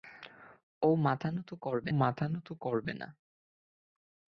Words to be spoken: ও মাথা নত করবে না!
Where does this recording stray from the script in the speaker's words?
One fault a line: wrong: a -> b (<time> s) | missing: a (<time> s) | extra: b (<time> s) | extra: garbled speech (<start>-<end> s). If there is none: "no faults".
extra: মাথা নত করবে (1.9 s)